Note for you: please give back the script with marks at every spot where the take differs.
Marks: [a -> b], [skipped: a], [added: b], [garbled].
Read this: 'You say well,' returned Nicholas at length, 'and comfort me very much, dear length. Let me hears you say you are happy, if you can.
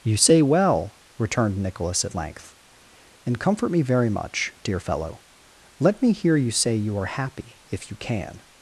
'You say well,' returned Nicholas at length, 'and comfort me very much, dear [length. -> fellow] Let me [hears -> hear] you say you are happy, if you can.